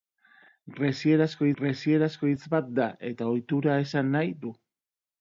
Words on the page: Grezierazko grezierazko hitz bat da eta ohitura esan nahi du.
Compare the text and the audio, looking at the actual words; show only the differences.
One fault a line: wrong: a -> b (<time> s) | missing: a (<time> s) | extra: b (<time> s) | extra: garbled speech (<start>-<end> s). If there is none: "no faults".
no faults